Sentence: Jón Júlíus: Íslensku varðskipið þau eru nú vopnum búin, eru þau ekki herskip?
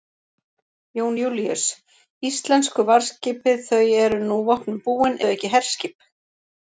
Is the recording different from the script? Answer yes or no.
yes